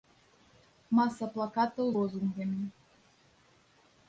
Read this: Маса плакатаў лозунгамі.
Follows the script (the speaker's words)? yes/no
yes